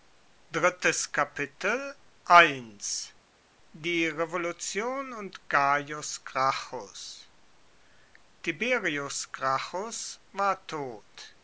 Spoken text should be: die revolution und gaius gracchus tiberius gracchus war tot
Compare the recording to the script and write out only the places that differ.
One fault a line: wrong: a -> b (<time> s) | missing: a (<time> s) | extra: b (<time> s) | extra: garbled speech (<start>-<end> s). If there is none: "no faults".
no faults